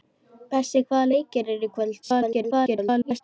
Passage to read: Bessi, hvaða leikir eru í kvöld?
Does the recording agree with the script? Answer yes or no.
no